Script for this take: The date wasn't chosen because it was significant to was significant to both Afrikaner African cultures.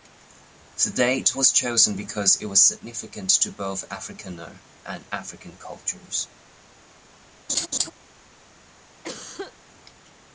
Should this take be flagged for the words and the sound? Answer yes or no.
yes